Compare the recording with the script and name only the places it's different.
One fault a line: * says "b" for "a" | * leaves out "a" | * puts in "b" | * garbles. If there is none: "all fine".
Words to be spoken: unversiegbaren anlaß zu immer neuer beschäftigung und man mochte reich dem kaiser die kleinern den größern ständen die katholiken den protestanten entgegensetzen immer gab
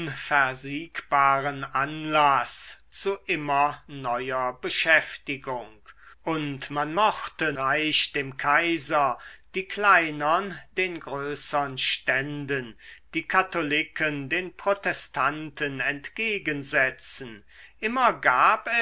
all fine